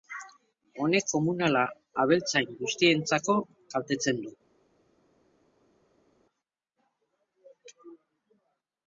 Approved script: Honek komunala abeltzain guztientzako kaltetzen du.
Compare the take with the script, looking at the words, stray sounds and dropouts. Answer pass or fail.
pass